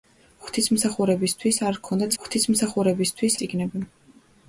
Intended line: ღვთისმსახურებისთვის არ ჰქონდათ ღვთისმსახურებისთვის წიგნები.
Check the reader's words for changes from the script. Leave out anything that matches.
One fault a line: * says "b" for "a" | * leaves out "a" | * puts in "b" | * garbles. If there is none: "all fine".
all fine